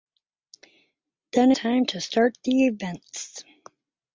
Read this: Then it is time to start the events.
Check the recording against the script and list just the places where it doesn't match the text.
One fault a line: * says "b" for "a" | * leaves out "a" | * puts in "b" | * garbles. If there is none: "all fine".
* leaves out "it is"